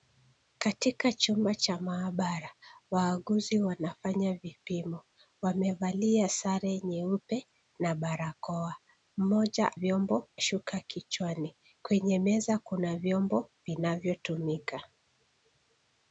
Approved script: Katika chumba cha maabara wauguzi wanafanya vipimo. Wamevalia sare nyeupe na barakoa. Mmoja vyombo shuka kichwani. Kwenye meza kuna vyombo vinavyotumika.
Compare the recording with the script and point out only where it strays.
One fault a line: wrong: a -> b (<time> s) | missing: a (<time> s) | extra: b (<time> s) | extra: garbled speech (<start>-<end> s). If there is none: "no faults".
no faults